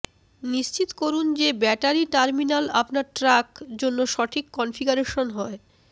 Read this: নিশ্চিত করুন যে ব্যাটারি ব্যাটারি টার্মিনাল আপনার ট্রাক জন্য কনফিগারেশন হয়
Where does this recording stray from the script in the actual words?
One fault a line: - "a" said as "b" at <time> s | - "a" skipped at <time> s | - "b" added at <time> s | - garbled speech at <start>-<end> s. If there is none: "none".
- "ব্যাটারি" skipped at 2.0 s
- "সঠিক" added at 4.1 s